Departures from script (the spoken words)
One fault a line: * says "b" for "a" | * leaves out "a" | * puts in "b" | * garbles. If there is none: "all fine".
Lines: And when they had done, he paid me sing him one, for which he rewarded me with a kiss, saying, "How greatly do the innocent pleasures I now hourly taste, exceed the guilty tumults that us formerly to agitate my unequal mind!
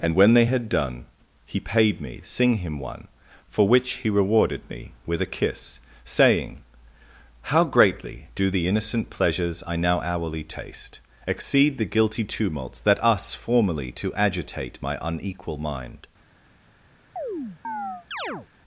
all fine